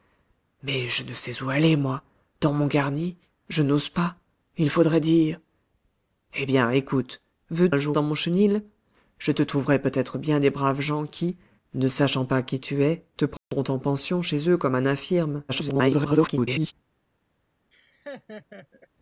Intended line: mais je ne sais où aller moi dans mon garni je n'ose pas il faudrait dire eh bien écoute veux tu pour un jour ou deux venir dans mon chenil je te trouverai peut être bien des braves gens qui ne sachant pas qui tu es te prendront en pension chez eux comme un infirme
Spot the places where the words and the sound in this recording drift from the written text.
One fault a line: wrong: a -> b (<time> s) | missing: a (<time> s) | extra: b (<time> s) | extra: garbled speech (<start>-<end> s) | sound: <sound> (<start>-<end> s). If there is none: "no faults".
missing: tu pour (7.7 s)
missing: ou deux venir (8.0 s)
sound: dropout (13.4-13.5 s)
extra: garbled speech (15.5-16.7 s)
sound: laugh (17.7-18.9 s)